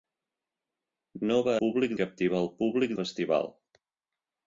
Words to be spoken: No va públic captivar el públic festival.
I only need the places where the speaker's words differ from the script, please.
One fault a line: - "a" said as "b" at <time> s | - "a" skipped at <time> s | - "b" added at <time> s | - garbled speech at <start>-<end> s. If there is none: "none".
none